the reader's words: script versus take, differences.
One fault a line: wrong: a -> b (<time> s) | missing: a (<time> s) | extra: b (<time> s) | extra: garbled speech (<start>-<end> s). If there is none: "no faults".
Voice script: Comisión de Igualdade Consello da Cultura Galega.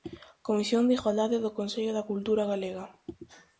extra: do (1.4 s)